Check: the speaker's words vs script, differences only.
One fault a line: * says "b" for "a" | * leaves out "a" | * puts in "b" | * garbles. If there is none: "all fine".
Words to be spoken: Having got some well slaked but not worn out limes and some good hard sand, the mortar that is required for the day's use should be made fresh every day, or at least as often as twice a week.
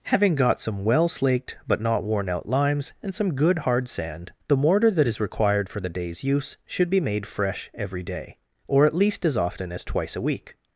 all fine